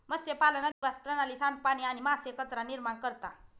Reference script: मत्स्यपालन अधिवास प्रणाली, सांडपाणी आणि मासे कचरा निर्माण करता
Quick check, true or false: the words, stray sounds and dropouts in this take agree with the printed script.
false